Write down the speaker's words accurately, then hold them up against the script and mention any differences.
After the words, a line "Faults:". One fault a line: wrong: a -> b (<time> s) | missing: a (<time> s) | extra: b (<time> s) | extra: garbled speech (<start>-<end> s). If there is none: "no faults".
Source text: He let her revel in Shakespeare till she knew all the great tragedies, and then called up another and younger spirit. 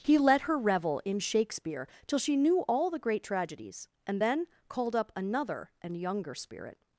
He let her revel in Shakespeare till she knew all the great tragedies, and then called up another and younger spirit.
Faults:
no faults